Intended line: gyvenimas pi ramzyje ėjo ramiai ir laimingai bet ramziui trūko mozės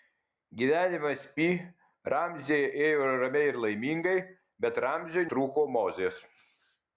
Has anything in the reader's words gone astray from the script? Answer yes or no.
no